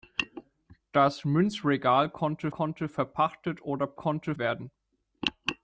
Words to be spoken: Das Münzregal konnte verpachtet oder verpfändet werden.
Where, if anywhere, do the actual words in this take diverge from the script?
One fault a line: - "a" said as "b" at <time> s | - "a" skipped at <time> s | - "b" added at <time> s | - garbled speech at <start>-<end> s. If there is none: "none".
- "konnte" added at 2.5 s
- "verpfändet" said as "konnte" at 3.9 s